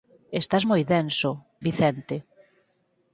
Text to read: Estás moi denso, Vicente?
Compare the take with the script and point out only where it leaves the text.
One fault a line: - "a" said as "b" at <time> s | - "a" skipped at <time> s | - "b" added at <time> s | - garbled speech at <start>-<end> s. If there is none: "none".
none